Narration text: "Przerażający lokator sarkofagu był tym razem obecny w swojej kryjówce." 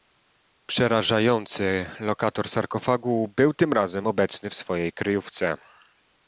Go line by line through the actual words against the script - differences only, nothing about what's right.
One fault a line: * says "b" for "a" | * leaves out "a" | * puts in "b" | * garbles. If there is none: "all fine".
all fine